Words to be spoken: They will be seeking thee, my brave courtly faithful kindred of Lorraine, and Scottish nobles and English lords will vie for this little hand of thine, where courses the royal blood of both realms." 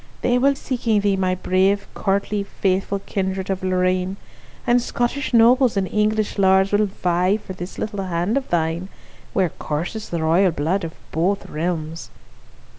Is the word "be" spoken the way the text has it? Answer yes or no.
no